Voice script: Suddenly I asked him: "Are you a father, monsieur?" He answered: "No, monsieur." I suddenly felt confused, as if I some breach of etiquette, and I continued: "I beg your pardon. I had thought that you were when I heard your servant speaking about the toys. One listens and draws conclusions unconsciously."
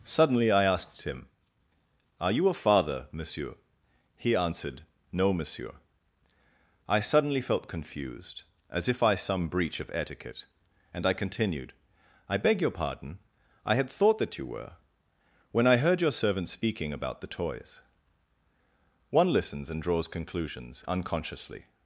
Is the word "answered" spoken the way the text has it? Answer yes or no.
yes